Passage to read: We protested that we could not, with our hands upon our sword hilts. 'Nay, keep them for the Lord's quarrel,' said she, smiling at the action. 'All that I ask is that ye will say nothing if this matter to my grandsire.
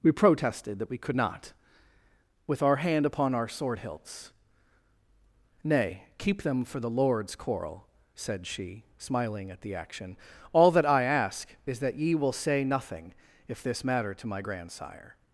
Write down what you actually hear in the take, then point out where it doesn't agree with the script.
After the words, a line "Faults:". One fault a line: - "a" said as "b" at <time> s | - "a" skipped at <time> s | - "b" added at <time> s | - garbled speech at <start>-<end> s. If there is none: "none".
We protested that we could not, with our hand upon our sword hilts. 'Nay, keep them for the Lord's quarrel,' said she, smiling at the action. 'All that I ask is that ye will say nothing if this matter to my grandsire.
Faults:
- "hands" said as "hand" at 2.8 s